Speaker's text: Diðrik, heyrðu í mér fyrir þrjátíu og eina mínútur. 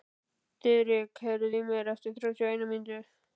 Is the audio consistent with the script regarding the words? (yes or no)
no